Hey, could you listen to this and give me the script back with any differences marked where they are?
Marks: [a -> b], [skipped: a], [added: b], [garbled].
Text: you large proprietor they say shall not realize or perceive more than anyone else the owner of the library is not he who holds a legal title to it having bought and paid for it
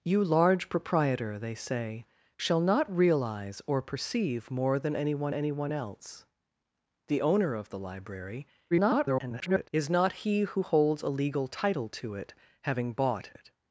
you large proprietor they say shall not realize or perceive more than anyone [added: anyone] else the owner of the library [garbled] is not he who holds a legal title to it having bought [skipped: and paid for] it